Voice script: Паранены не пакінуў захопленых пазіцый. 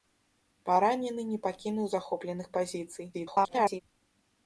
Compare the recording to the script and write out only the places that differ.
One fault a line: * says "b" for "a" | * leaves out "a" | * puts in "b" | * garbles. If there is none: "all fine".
* garbles